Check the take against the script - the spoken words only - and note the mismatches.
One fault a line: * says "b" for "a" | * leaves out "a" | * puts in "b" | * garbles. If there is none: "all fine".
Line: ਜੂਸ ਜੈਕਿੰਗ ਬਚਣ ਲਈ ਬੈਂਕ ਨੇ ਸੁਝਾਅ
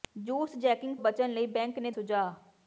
all fine